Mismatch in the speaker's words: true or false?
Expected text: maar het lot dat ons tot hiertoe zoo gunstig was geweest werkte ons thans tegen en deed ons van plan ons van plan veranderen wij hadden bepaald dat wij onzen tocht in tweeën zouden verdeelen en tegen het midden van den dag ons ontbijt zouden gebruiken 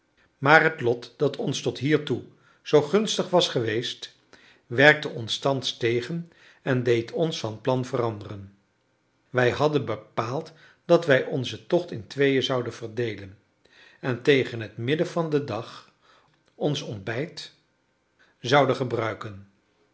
true